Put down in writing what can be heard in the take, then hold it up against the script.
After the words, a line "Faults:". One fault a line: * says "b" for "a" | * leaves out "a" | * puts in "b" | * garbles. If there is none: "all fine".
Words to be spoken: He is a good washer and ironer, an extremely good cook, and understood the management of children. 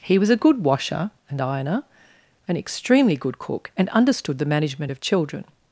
He was a good washer and ironer, an extremely good cook, and understood the management of children.
Faults:
* says "was" for "is"